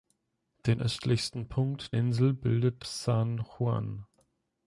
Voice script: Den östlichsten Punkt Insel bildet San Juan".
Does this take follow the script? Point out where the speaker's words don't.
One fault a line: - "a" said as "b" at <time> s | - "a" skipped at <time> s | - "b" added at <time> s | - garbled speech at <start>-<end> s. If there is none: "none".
none